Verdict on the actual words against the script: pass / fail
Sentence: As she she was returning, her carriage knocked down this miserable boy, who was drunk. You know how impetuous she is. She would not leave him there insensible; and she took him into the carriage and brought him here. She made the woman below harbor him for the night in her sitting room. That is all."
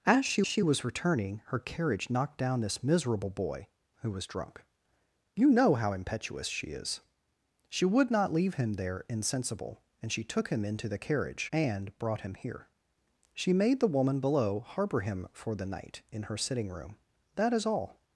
pass